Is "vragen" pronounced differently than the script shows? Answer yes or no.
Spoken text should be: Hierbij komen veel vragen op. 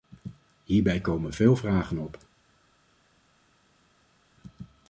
no